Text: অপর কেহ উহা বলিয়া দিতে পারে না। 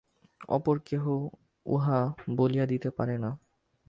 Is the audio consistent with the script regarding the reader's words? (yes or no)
yes